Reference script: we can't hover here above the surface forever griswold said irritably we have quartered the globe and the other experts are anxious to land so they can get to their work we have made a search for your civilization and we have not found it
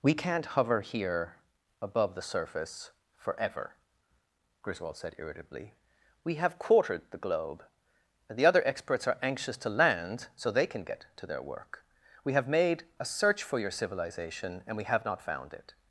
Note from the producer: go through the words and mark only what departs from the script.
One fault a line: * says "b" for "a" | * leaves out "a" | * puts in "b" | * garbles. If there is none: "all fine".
all fine